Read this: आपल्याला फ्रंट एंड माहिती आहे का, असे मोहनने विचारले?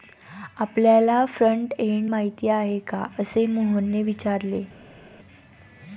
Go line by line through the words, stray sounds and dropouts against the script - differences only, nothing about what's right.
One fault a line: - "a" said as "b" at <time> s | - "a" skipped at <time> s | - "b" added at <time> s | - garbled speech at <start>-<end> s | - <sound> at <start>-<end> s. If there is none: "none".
none